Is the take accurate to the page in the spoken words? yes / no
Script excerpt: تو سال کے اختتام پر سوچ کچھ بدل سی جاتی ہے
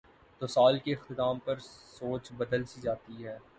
no